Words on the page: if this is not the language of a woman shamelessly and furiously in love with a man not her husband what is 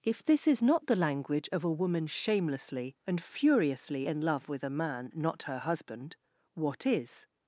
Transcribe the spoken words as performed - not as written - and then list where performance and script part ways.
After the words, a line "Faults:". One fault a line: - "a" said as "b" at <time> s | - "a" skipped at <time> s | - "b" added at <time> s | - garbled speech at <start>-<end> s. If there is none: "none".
if this is not the language of a woman shamelessly and furiously in love with a man not her husband what is
Faults:
none